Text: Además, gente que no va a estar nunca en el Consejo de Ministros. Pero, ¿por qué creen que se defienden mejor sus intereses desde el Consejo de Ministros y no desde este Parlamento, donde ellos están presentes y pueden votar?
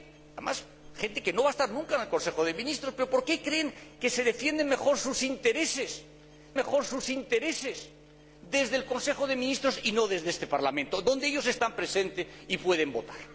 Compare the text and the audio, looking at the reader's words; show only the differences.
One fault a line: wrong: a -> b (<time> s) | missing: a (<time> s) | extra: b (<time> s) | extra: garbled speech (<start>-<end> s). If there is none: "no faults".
extra: mejor sus intereses (6.6 s)